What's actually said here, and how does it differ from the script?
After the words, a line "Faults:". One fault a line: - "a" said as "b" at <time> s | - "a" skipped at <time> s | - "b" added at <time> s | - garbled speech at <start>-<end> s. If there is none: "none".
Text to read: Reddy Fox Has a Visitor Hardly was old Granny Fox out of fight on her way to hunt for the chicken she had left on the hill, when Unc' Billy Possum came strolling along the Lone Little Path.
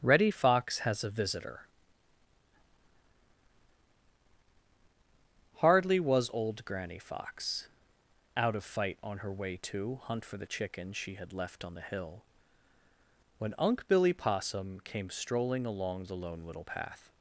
Reddy Fox Has a Visitor Hardly was old Granny Fox out of fight on her way to hunt for the chicken she had left on the hill, when Unc' Billy Possum came strolling along the Lone Little Path.
Faults:
none